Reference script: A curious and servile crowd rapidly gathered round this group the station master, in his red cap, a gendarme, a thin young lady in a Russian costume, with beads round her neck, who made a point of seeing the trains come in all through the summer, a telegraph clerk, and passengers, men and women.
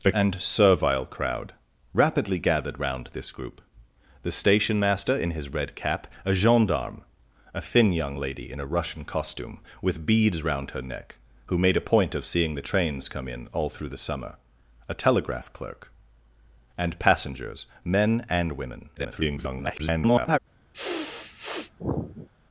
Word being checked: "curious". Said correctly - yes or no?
no